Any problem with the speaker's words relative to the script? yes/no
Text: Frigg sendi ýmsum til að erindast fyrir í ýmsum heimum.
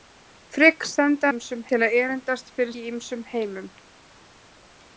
no